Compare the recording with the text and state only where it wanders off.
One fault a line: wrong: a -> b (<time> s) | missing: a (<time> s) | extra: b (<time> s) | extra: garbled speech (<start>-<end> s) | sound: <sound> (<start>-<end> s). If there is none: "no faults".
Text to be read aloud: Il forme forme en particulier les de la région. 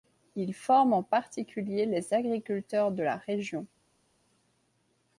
missing: forme (0.9 s)
extra: agriculteurs (2.1 s)